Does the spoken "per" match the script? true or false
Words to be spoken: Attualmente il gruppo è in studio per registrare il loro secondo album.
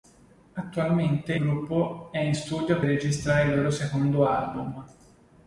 false